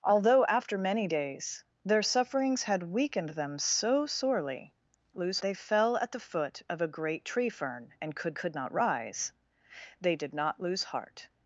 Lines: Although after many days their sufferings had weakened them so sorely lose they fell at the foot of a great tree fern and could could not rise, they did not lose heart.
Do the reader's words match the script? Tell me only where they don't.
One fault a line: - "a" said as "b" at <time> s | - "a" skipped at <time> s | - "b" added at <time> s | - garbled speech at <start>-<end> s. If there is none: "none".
none